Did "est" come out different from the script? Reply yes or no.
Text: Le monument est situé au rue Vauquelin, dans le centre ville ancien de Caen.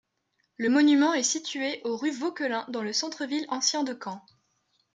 no